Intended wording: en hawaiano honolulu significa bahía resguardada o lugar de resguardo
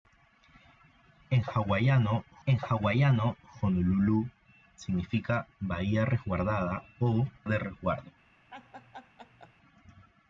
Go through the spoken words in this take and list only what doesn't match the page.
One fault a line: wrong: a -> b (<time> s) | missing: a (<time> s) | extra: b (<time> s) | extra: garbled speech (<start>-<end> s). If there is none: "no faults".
extra: en hawaiano (2.4 s)
missing: lugar (7.3 s)